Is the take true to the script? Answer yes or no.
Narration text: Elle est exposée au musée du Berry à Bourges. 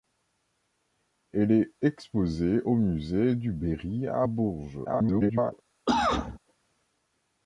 no